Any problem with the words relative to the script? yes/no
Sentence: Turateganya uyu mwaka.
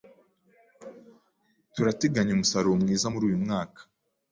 yes